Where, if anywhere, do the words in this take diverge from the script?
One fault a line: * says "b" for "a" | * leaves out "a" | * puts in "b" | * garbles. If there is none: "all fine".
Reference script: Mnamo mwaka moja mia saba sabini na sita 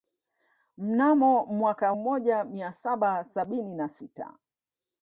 all fine